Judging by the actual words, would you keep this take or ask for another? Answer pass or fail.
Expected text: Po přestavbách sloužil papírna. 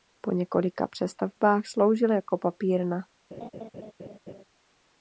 fail